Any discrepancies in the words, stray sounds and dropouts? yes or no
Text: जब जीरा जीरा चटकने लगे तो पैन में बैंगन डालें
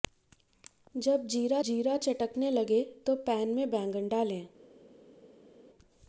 no